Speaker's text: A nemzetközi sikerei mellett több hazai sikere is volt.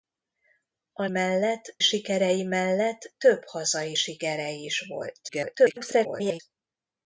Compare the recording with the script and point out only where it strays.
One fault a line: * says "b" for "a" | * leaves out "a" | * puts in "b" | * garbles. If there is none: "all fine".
* says "mellett" for "nemzetközi"
* garbles